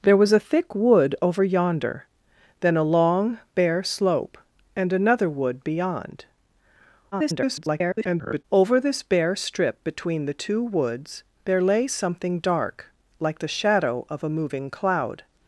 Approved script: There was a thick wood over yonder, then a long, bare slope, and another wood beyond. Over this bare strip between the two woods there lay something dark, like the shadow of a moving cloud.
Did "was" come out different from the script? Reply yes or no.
no